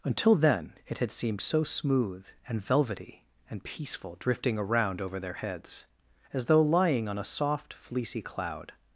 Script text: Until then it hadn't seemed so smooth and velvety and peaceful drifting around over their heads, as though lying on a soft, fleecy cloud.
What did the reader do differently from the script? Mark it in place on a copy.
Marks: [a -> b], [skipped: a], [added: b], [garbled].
Until then it [hadn't -> had] seemed so smooth and velvety and peaceful drifting around over their heads, as though lying on a soft, fleecy cloud.